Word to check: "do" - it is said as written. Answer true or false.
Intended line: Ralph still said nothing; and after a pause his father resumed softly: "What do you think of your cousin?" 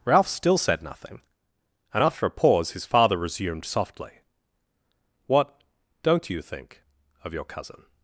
false